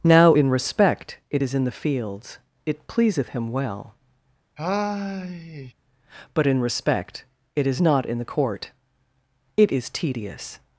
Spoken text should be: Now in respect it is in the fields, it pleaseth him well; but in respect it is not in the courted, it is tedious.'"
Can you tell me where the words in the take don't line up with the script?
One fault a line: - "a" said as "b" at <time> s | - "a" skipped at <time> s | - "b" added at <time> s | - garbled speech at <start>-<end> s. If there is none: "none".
- "courted" said as "court" at 8.2 s